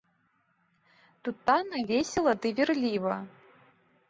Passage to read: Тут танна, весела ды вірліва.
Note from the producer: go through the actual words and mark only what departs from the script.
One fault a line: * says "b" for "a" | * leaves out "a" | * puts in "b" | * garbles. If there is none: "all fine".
all fine